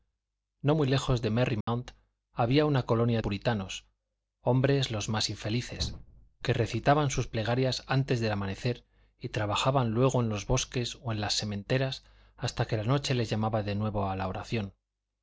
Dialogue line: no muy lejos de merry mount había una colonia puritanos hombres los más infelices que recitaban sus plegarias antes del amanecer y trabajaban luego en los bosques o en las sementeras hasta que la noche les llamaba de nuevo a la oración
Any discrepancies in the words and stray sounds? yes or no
yes